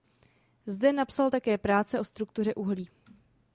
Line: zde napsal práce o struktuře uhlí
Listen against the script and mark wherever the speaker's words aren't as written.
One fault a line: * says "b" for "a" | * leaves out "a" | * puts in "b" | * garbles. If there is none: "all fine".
* puts in "také"